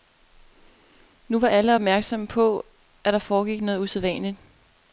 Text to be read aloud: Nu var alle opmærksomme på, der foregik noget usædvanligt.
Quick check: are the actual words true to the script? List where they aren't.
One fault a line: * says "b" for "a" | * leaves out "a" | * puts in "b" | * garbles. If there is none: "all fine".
* puts in "at"